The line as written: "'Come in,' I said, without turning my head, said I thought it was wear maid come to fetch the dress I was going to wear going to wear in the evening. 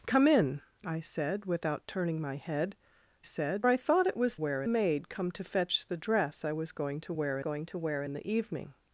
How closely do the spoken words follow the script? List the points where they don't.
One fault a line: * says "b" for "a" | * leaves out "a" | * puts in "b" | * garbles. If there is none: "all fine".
all fine